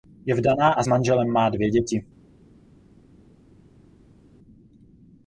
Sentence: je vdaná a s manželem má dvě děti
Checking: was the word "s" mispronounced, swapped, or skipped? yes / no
no